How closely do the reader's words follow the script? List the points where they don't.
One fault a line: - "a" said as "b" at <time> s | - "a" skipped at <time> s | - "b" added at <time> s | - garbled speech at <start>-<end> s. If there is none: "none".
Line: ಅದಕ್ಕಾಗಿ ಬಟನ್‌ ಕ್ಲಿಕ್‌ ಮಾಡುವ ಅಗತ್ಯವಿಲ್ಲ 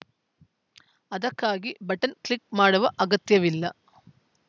none